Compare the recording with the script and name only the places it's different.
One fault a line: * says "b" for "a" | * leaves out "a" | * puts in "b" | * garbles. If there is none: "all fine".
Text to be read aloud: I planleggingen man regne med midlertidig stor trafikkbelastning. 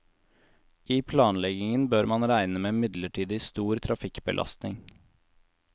* puts in "bør"